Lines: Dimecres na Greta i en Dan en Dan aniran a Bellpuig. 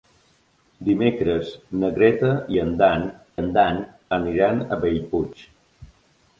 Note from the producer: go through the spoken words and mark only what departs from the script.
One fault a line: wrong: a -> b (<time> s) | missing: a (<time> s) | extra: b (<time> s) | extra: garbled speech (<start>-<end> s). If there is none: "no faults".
no faults